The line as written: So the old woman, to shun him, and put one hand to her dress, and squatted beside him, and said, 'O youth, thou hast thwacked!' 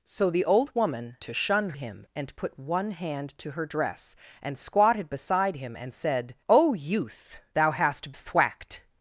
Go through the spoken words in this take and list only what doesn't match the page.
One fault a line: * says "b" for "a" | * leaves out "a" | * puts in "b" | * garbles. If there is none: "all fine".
all fine